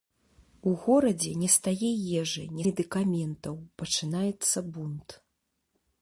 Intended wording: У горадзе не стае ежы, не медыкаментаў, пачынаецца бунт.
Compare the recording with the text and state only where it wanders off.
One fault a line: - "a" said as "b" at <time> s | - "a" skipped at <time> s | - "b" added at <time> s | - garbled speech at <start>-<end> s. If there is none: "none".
none